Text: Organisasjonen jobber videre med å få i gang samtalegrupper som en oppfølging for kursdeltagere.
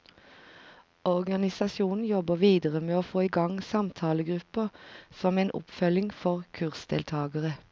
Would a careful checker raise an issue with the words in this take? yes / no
no